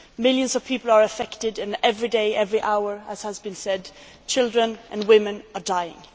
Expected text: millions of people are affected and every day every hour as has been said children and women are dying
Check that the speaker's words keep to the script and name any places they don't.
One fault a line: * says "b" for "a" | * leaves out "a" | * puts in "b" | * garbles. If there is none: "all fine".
all fine